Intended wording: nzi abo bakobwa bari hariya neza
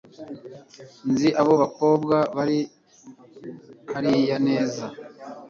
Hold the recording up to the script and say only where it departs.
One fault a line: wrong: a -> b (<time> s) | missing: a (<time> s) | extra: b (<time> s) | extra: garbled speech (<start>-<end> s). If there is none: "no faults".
no faults